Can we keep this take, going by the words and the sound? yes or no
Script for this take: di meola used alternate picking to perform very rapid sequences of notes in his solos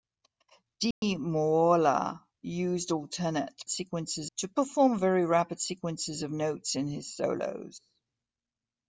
no